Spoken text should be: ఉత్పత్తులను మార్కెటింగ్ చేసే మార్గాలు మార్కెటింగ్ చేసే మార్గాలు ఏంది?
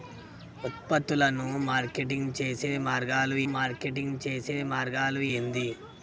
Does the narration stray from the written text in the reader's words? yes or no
no